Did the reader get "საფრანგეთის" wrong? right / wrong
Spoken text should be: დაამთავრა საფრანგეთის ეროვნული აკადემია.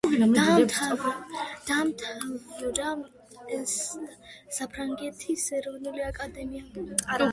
right